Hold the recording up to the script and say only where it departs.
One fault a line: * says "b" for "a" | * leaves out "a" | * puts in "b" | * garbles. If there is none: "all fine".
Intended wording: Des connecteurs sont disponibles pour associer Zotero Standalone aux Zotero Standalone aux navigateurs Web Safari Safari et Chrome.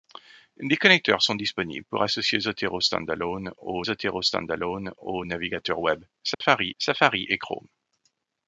all fine